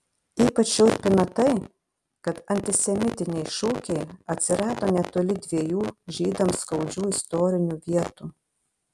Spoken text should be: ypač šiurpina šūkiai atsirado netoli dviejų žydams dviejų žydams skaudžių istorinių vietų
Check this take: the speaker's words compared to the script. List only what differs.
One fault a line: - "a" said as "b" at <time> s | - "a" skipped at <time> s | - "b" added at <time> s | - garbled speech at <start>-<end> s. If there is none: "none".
- "tai kad antisemitiniai" added at 1.4 s
- "dviejų žydams" skipped at 6.6 s